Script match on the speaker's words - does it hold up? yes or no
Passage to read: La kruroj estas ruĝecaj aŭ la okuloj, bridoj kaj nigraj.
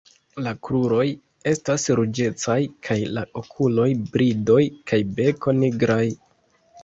no